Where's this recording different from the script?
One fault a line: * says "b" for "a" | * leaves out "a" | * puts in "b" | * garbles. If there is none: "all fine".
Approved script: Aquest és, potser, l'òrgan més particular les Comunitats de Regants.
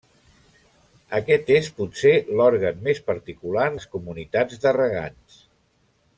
all fine